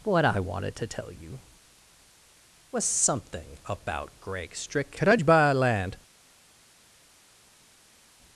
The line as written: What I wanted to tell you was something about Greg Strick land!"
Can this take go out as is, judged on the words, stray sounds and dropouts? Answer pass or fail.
fail